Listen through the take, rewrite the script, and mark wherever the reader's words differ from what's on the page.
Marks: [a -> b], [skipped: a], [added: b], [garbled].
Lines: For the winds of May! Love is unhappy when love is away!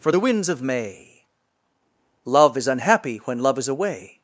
For the winds of May! Love is unhappy when love is away!